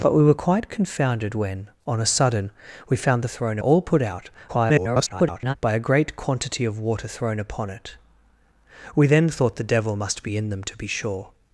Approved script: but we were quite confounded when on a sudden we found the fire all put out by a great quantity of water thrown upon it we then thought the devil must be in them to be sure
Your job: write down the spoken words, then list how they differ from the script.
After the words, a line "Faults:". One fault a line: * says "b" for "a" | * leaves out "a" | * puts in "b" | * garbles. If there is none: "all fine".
but we were quite confounded when on a sudden we found the thrown all put out [garbled] by a great quantity of water thrown upon it we then thought the devil must be in them to be sure
Faults:
* says "thrown" for "fire"
* garbles